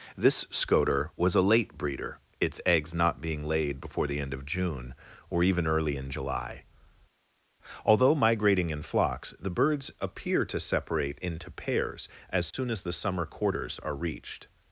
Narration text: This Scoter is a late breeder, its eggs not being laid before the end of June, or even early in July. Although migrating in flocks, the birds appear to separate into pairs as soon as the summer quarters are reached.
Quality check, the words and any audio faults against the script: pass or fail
fail